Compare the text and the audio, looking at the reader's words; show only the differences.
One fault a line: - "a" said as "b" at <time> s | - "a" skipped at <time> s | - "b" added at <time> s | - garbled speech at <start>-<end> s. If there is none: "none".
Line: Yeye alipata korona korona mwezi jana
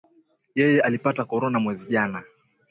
- "korona" skipped at 1.6 s